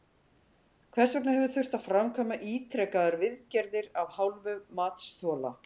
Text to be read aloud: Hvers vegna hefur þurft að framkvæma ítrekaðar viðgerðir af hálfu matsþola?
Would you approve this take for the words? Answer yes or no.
yes